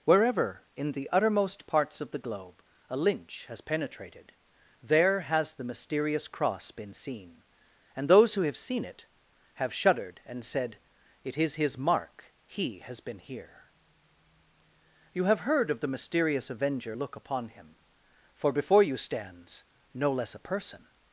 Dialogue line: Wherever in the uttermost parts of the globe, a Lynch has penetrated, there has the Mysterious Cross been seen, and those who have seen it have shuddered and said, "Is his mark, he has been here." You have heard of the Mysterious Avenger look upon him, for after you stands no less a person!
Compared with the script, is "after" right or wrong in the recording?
wrong